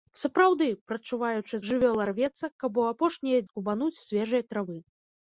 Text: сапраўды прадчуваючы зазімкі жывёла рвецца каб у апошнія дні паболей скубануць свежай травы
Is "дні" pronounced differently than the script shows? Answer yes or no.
yes